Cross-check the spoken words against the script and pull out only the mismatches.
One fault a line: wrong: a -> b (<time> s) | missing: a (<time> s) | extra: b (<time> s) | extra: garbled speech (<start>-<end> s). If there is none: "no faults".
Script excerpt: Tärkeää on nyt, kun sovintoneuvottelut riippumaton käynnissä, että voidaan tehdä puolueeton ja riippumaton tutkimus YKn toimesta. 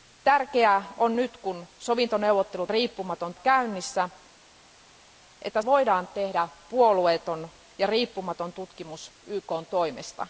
no faults